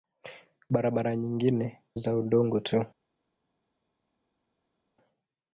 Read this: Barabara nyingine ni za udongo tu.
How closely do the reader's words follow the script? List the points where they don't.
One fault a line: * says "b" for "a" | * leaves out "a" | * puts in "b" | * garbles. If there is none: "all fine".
* leaves out "ni"